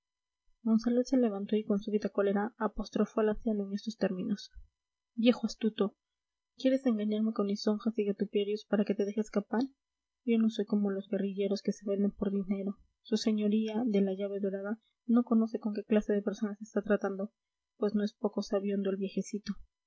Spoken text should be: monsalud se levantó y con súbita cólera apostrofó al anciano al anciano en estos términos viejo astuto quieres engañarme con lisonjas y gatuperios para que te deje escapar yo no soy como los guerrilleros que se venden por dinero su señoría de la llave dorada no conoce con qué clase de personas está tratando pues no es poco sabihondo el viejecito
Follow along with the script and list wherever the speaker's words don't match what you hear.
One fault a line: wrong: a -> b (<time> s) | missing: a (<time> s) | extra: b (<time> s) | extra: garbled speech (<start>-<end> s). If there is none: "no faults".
missing: al anciano (3.7 s)